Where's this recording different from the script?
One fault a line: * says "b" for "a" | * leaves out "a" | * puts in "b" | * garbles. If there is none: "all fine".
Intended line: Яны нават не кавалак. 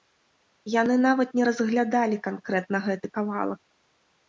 * puts in "разглядалі канкрэтна гэты"